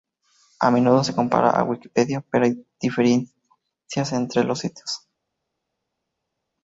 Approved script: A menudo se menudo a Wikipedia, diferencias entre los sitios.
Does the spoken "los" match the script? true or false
true